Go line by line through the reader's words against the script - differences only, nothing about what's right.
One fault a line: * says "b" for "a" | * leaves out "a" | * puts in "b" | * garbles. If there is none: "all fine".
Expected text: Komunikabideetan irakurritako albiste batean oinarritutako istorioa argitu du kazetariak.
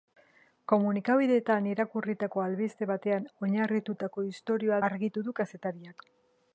all fine